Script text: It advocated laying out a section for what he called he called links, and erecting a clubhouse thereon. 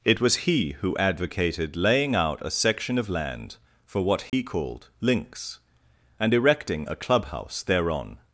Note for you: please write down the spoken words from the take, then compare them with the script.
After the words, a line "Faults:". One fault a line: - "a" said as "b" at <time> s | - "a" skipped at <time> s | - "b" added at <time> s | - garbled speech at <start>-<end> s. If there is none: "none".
It was he who advocated laying out a section of land for what he called links, and erecting a clubhouse thereon.
Faults:
- "was he who" added at 0.2 s
- "of land" added at 3.0 s
- "he called" skipped at 4.9 s